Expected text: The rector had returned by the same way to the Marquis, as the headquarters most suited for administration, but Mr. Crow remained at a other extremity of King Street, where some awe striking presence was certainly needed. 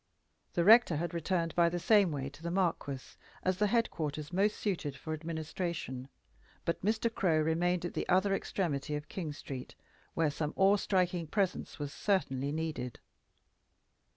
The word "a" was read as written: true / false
false